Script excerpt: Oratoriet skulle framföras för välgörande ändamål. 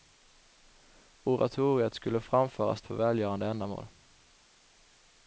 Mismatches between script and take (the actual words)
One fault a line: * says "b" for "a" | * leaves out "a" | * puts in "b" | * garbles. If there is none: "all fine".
all fine